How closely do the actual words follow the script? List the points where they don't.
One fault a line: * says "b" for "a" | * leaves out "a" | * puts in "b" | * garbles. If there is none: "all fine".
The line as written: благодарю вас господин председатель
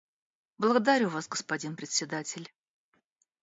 all fine